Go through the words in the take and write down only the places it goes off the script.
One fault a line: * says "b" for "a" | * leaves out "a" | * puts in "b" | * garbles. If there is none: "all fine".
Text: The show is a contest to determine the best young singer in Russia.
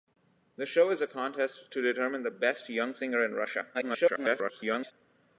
* garbles